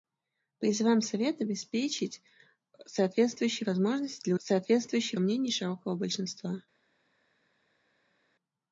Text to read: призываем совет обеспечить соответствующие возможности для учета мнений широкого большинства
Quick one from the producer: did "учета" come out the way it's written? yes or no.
no